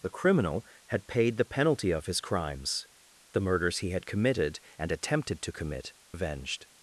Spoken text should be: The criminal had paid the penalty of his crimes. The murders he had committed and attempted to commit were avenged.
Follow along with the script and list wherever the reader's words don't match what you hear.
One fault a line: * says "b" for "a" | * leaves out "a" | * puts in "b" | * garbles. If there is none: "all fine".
* leaves out "were"